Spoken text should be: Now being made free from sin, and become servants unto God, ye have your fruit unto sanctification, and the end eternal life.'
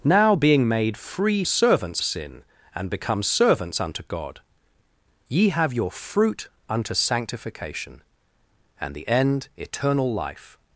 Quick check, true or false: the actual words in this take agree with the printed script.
false